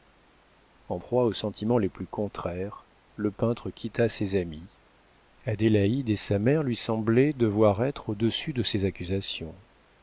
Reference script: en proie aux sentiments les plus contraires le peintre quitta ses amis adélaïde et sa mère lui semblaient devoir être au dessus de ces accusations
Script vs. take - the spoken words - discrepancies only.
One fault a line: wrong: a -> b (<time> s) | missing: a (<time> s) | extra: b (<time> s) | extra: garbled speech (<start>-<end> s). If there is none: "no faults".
no faults